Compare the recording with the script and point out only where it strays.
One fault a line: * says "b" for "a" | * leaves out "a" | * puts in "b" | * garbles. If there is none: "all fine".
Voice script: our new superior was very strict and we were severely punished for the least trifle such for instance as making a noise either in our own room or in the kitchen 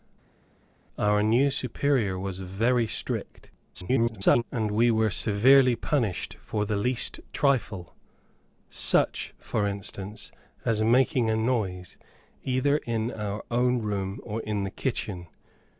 * garbles